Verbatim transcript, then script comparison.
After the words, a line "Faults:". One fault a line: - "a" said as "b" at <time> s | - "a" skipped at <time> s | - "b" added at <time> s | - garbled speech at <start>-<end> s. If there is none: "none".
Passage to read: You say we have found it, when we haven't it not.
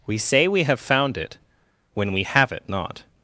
We say we have found it, when we have it not.
Faults:
- "You" said as "We" at 0.1 s
- "haven't" said as "have" at 2.2 s